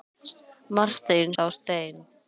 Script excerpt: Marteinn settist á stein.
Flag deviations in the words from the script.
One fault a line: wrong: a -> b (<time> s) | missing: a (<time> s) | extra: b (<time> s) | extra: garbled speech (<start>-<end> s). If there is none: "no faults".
missing: settist (1.3 s)